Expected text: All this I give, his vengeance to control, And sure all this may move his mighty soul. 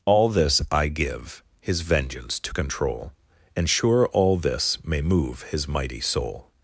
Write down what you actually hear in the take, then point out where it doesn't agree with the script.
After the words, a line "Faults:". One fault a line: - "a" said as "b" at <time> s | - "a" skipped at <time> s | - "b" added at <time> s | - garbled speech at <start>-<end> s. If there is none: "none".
All this I give, his vengeance to control, And sure all this may move his mighty soul.
Faults:
none